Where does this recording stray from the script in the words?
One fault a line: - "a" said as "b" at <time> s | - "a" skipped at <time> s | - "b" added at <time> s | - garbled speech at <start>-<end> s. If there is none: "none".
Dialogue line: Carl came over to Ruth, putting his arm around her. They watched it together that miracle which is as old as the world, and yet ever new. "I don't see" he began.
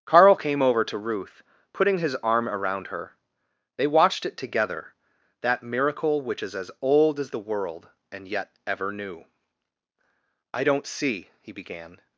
none